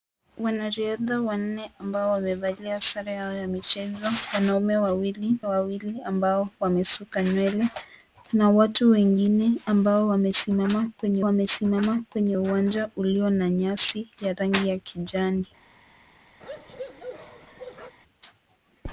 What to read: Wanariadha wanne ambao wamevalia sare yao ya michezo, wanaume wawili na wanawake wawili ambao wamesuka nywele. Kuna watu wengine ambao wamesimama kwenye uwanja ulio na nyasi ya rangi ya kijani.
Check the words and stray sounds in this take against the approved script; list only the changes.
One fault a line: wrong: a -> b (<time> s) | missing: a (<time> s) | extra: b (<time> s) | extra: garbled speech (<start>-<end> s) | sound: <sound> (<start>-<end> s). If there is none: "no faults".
missing: na wanawake (5.3 s)
extra: wamesimama kwenye (11.2 s)
sound: bark (16.4-17.9 s)